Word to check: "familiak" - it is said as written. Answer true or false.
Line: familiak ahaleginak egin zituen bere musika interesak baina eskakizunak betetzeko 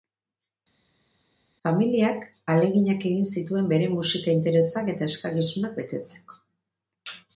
true